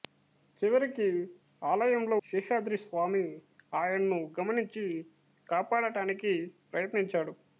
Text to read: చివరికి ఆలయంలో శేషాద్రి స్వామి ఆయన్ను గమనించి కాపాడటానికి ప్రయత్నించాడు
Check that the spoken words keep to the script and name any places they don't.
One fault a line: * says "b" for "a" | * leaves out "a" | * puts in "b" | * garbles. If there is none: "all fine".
all fine